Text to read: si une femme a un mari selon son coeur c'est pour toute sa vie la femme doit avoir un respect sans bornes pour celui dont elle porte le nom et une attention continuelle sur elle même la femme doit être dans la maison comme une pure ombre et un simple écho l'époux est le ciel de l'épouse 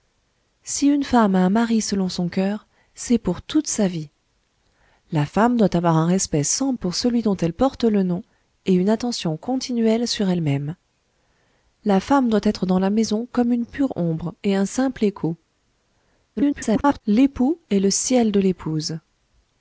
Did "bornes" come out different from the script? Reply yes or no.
yes